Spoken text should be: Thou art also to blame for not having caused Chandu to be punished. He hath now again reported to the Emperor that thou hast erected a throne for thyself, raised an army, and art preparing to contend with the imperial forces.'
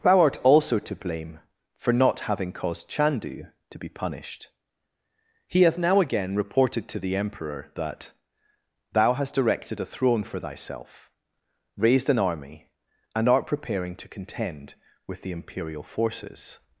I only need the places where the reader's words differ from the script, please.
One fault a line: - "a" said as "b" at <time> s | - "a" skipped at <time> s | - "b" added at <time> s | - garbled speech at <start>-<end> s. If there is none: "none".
none